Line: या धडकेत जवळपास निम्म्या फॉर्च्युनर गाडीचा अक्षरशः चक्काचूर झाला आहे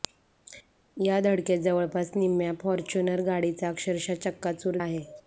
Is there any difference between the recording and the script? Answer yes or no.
yes